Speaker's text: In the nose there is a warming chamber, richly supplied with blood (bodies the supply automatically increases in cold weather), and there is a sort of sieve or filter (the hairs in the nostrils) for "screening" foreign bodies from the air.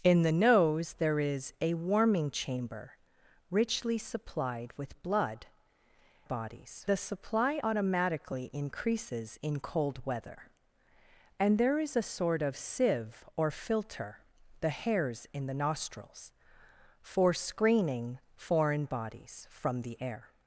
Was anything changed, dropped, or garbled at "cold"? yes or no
no